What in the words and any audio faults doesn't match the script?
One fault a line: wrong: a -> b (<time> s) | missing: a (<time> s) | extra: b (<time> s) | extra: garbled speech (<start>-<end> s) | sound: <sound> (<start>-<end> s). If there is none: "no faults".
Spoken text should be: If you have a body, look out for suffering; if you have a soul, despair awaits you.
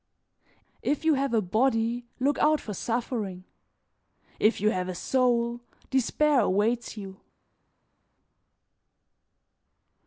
no faults